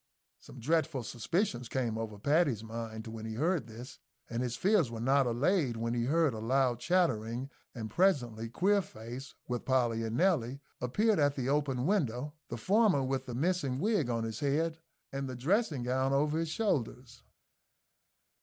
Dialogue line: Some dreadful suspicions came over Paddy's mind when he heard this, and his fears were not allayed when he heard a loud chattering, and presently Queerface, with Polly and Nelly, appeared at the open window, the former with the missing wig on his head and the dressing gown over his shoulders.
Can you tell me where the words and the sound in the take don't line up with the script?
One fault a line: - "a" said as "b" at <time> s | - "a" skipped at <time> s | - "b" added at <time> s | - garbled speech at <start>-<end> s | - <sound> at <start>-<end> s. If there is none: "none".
none